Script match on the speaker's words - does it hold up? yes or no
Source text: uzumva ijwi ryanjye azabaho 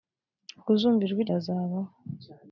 no